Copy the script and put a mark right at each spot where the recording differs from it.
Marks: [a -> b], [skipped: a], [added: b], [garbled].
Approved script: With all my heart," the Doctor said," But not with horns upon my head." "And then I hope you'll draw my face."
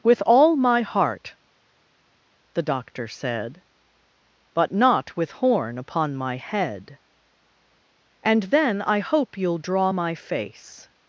With all my heart," the Doctor said," But not with [horns -> horn] upon my head." "And then I hope you'll draw my face."